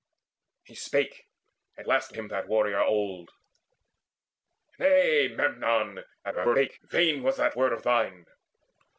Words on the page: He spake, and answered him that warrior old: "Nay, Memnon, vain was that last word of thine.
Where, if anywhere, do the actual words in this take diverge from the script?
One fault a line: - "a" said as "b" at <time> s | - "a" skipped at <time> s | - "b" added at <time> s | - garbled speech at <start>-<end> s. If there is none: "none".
- "answered" said as "last" at 1.8 s
- garbled speech at 6.2-6.8 s
- "last" skipped at 7.6 s